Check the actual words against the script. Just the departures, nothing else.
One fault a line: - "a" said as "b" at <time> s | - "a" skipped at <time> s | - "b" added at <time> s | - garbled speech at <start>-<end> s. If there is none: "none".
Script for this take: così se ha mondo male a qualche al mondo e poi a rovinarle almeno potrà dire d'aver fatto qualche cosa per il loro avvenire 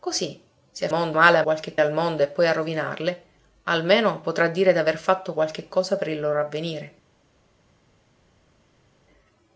none